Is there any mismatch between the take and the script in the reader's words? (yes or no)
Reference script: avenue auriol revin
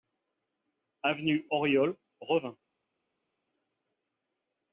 no